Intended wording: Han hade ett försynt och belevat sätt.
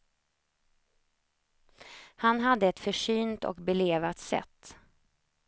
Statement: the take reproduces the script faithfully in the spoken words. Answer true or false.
true